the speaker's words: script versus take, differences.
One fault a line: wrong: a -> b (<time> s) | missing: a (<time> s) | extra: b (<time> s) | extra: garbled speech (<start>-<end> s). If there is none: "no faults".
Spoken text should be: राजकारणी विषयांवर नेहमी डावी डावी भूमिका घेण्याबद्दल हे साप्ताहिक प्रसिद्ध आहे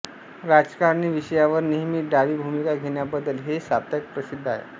missing: डावी (2.4 s)